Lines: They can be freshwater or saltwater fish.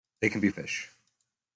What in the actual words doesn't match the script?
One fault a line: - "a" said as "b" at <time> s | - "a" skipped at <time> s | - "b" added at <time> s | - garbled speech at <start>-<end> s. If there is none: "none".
- "freshwater or saltwater" skipped at 0.5 s